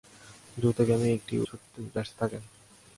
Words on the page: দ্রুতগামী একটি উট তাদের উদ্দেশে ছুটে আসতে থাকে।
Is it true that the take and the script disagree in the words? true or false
true